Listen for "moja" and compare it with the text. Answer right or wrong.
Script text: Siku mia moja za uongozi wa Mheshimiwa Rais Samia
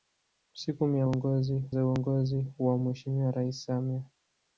wrong